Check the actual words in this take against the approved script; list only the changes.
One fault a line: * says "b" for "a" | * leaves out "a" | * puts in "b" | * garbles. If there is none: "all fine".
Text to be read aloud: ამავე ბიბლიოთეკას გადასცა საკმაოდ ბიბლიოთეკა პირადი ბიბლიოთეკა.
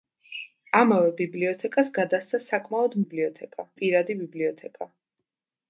all fine